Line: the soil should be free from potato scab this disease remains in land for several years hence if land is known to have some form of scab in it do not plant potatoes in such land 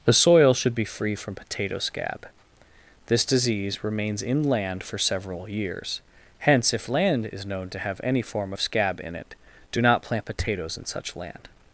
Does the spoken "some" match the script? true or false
false